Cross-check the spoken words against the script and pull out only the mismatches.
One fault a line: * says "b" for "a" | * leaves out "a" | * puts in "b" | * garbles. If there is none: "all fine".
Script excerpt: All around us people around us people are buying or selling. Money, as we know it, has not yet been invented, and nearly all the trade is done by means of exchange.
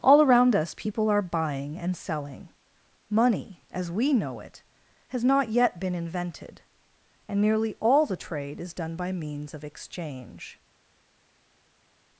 * leaves out "around us people"
* says "and" for "or"